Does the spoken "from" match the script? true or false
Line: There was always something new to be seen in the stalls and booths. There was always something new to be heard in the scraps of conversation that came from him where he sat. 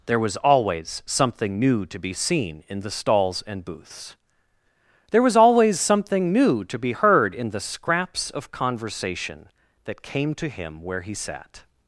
false